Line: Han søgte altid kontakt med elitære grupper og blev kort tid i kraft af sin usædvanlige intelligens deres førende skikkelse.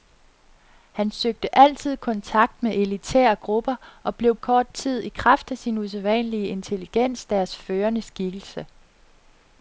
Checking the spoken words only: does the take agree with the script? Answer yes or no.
yes